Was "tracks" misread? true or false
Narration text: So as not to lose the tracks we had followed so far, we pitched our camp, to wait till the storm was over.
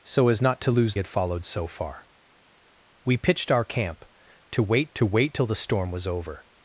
true